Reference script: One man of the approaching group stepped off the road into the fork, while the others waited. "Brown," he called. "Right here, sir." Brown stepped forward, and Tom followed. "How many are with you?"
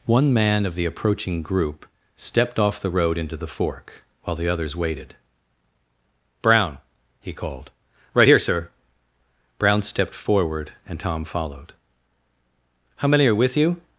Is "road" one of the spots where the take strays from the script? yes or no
no